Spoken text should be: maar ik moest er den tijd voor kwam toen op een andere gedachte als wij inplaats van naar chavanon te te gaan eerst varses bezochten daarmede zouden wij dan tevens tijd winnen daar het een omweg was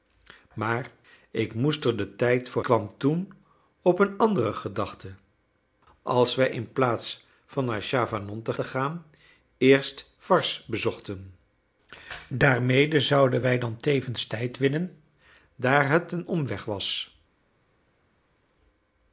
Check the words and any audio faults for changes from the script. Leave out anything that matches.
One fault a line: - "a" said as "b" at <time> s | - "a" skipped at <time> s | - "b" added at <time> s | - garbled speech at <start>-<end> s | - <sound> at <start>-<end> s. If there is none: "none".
none